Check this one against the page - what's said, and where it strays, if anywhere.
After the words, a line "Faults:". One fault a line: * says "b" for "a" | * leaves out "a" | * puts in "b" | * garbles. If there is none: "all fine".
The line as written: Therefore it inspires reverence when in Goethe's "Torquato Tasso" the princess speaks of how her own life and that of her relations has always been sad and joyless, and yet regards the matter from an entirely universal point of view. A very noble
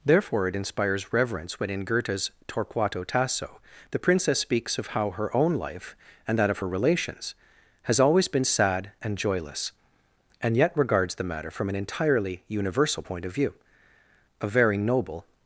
Therefore it inspires reverence when in Goethe's "Torquato Tasso" the princess speaks of how her own life and that of her relations has always been sad and joyless, and yet regards the matter from an entirely universal point of view. A very noble
Faults:
all fine